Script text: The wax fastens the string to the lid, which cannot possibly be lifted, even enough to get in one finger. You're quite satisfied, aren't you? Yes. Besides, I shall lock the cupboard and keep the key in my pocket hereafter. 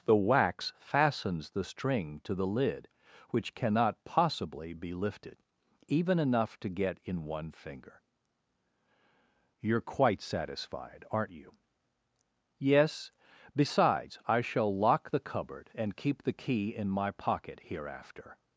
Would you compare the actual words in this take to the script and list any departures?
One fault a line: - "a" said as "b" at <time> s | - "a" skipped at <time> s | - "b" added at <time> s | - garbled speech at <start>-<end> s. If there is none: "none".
none